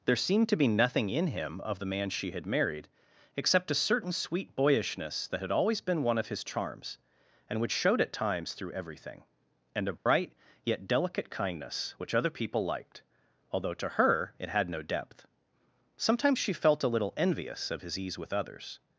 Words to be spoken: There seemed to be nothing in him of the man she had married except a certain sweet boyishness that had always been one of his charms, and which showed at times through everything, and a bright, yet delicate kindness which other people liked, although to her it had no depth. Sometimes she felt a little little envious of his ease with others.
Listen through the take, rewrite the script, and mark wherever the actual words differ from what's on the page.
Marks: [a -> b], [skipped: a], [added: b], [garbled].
There seemed to be nothing in him of the man she had married except a certain sweet boyishness that had always been one of his charms, and which showed at times through everything, and a bright, yet delicate kindness which other people liked, although to her it had no depth. Sometimes she felt a little [skipped: little] envious of his ease with others.